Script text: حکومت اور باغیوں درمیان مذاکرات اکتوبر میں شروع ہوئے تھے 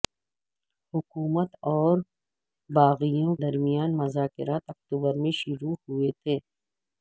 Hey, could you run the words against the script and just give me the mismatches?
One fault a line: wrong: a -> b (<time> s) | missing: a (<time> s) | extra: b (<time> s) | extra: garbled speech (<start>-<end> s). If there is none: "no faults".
no faults